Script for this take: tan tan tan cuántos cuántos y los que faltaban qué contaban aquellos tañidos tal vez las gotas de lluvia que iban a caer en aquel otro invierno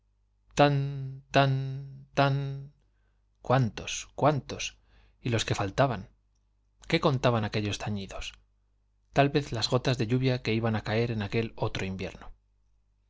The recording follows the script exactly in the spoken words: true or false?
true